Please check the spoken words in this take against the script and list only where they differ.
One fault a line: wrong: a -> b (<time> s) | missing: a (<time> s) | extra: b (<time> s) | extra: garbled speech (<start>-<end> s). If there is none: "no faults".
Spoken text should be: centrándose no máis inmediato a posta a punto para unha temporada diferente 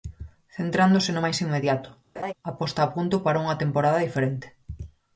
no faults